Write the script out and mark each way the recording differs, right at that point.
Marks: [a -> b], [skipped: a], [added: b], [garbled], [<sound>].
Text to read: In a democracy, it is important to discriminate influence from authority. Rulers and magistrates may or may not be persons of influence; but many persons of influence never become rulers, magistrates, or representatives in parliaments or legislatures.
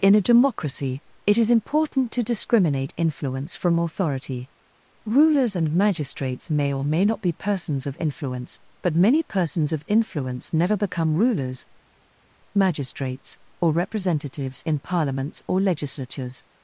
In a democracy, it is important to discriminate influence from authority. Rulers and magistrates may or may not be persons of influence; but many persons of influence never become rulers, magistrates, or representatives in parliaments or legislatures.